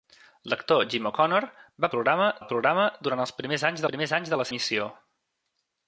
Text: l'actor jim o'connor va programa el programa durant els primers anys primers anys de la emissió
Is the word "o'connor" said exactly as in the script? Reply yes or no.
yes